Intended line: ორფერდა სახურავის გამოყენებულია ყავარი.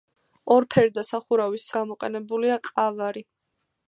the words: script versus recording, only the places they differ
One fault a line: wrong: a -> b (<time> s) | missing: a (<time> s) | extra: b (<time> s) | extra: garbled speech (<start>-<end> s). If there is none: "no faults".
no faults